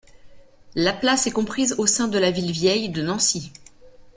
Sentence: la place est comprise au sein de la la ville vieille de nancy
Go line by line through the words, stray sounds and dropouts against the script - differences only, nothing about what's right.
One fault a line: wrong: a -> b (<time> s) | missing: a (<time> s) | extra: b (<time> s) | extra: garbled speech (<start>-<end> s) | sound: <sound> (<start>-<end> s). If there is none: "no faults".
missing: la (2.3 s)